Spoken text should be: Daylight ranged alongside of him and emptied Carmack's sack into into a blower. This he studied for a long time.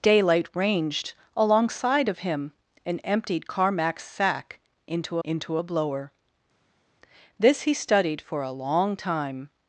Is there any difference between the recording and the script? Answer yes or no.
no